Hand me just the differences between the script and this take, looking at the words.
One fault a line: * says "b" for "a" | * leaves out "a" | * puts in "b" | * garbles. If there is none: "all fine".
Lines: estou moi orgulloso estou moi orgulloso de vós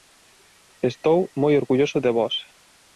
* leaves out "estou moi orgulloso"